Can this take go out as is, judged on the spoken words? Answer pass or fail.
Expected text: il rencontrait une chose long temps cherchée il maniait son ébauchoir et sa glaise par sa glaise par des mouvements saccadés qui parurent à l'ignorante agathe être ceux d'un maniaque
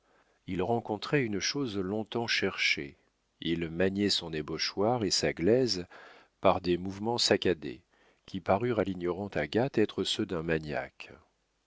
fail